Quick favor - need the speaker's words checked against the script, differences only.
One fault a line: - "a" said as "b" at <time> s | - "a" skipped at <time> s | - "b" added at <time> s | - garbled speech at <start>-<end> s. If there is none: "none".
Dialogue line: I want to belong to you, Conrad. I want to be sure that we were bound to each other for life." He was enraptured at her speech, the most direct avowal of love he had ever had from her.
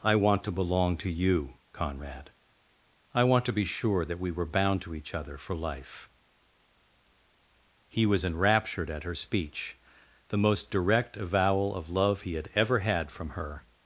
none